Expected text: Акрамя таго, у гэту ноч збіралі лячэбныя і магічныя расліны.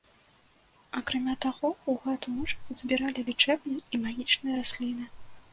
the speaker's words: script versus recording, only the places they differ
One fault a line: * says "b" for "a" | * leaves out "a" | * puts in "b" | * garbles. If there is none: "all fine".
all fine